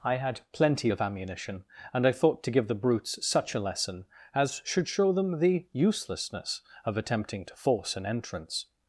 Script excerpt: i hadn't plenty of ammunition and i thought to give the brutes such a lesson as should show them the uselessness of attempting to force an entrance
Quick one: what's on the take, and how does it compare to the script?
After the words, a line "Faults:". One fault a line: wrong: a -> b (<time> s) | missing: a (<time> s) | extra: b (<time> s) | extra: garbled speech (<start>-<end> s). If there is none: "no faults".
i had plenty of ammunition and i thought to give the brutes such a lesson as should show them the uselessness of attempting to force an entrance
Faults:
wrong: hadn't -> had (0.1 s)